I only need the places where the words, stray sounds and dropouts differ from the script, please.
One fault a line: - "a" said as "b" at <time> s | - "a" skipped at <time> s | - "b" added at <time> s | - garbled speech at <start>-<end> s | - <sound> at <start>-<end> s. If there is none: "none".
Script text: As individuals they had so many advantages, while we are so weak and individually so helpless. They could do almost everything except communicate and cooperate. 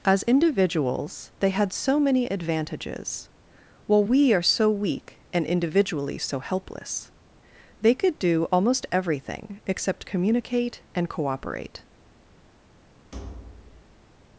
- thud at 13.1-14.1 s